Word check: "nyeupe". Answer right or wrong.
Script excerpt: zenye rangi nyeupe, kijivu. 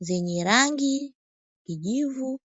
wrong